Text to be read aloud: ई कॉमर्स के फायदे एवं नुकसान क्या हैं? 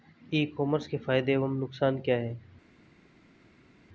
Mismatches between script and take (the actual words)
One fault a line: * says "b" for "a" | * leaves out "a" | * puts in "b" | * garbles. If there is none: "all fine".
all fine